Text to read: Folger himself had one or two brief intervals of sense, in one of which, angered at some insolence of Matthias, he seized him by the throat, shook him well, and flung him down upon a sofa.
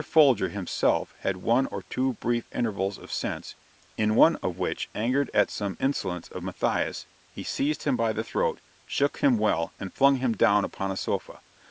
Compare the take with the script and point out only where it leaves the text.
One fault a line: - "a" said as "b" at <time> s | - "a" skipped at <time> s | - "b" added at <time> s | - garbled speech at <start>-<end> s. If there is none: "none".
none